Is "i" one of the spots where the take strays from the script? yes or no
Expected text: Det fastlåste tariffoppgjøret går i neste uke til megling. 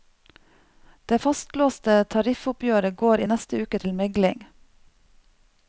no